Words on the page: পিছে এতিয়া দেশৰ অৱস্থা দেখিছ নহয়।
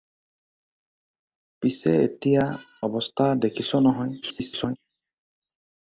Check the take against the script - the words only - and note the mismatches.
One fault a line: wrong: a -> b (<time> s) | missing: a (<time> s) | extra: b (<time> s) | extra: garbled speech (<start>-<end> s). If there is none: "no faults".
missing: দেশৰ (2.5 s)
extra: garbled speech (4.2-4.8 s)